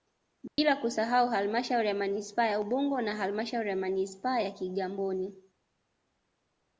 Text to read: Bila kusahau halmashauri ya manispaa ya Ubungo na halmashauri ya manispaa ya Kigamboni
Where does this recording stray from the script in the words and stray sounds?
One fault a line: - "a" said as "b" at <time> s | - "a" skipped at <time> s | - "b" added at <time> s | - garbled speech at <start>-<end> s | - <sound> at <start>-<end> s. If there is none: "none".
- dropout at 0.5-0.6 s